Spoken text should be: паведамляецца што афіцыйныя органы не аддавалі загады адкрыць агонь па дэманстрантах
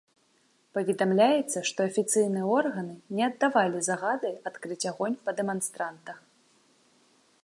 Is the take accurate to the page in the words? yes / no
yes